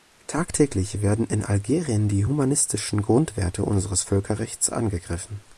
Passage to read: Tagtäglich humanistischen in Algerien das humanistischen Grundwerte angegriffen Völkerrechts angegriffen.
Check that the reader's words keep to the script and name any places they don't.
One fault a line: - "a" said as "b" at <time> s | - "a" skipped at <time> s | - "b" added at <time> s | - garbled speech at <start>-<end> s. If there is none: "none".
- "humanistischen" said as "werden" at 1.0 s
- "das" said as "die" at 2.1 s
- "angegriffen" said as "unseres" at 3.6 s